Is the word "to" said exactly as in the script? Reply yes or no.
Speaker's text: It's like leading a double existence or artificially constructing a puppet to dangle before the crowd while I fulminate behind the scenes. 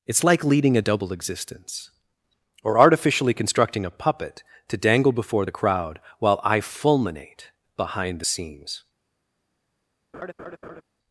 yes